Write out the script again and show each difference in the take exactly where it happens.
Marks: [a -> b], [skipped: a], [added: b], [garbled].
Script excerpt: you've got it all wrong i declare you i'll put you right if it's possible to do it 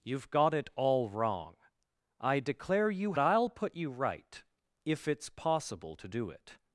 you've got it all wrong i declare you i'll put you right if it's possible to do it